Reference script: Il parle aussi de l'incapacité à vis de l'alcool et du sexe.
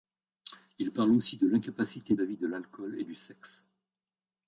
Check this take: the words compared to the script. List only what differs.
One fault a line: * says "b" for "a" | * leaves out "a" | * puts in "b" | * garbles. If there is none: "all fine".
all fine